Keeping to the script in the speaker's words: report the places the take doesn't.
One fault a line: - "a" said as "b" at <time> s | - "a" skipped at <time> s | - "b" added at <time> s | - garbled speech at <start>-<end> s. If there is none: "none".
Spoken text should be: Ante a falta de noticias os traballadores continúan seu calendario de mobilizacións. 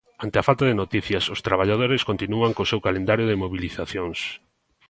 - "co" added at 2.5 s